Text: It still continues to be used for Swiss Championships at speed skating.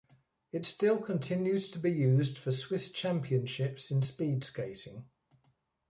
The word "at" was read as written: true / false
false